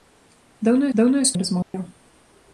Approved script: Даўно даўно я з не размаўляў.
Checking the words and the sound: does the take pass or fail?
fail